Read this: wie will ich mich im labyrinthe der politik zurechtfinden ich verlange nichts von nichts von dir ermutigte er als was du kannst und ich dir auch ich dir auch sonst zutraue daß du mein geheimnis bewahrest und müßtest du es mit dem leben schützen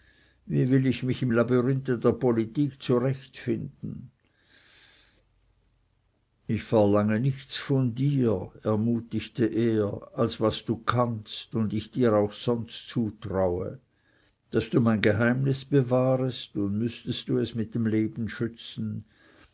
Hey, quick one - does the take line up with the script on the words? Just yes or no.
no